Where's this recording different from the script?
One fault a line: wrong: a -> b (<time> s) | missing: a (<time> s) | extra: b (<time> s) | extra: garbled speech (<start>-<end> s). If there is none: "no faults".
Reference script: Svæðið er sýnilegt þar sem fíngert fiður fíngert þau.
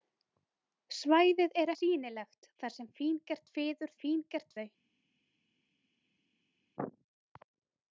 no faults